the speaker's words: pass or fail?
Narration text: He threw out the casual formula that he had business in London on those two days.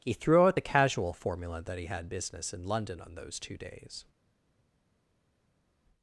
pass